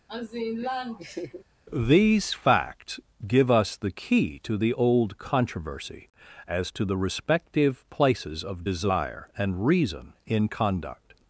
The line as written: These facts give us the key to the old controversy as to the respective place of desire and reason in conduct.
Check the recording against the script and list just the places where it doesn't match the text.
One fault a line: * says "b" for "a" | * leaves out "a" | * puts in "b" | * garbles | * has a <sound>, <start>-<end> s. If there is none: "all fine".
* has a laugh, 0.1-1.4 s
* says "places" for "place"